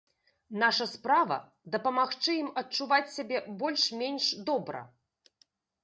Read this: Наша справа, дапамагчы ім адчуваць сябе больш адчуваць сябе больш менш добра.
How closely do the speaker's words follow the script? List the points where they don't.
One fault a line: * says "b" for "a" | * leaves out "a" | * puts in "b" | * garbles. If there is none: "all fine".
* leaves out "адчуваць сябе больш"